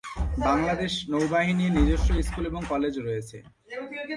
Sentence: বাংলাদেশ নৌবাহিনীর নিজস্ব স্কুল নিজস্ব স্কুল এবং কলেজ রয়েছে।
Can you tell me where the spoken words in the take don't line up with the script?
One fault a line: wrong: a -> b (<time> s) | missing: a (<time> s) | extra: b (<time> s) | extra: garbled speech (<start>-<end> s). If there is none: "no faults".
missing: নিজস্ব স্কুল (2.4 s)